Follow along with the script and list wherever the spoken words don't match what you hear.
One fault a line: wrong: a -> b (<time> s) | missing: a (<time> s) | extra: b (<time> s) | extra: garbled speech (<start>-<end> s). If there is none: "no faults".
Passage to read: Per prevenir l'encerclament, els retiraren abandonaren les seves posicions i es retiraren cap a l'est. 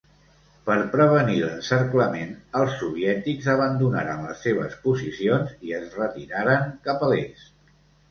wrong: retiraren -> soviètics (2.8 s)